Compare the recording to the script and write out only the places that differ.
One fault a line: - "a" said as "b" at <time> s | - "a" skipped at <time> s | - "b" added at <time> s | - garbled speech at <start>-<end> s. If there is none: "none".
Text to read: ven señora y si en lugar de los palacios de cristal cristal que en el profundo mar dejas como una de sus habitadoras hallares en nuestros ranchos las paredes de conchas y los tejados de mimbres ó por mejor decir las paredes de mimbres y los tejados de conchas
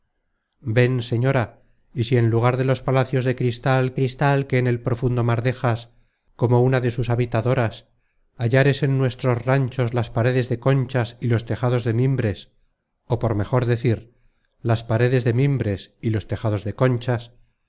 none